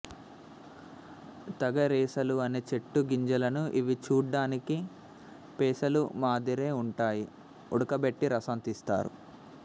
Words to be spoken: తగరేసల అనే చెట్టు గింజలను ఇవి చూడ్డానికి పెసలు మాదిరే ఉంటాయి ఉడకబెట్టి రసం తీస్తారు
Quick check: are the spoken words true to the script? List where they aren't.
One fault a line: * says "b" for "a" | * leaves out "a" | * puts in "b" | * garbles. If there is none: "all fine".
all fine